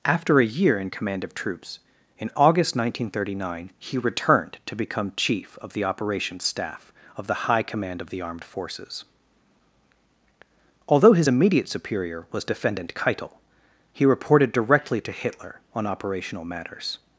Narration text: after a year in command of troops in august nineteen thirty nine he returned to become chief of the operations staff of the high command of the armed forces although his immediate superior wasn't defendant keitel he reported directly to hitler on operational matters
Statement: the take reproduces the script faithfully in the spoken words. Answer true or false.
false